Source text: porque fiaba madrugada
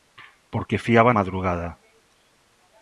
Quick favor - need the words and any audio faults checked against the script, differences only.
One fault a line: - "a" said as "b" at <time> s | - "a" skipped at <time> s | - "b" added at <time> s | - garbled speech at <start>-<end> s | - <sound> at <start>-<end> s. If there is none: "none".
none